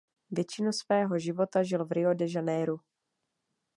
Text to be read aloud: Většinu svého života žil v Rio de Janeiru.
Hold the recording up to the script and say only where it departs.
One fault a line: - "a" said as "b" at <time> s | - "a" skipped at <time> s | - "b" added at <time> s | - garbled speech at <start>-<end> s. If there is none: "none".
none